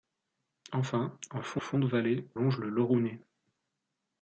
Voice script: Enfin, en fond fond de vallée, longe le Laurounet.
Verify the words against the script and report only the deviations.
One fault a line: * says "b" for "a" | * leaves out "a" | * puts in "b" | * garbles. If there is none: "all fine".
all fine